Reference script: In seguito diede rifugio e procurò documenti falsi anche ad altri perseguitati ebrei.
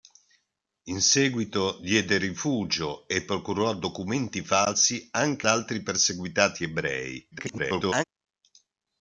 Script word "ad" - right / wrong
wrong